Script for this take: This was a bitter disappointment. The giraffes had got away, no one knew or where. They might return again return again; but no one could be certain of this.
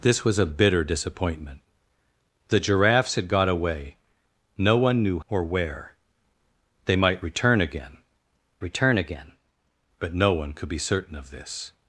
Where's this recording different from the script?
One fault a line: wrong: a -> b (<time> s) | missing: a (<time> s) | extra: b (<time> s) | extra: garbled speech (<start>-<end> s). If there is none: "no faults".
no faults